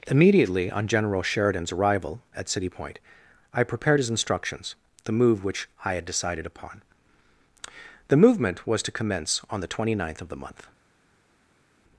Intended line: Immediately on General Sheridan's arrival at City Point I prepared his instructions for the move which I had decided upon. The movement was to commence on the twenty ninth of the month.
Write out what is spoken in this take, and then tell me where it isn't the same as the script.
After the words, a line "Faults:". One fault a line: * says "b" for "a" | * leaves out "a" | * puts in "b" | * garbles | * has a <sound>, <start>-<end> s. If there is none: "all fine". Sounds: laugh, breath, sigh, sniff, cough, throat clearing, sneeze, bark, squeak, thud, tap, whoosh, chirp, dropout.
Immediately on General Sheridan's arrival at City Point I prepared his instructions the move which I had decided upon. The movement was to commence on the twenty ninth of the month.
Faults:
* leaves out "for"